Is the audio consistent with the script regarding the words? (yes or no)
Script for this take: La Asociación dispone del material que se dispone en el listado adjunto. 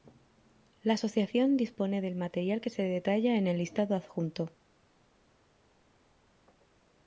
no